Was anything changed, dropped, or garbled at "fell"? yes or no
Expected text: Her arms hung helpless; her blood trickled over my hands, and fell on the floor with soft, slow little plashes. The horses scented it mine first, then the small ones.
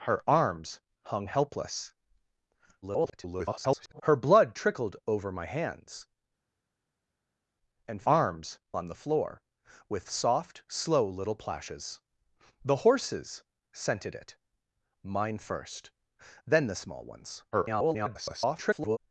yes